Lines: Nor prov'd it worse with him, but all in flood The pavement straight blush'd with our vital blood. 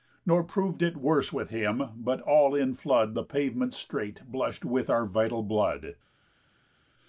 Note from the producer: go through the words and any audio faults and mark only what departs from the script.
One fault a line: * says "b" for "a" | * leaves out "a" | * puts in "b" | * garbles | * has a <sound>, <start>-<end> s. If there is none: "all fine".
all fine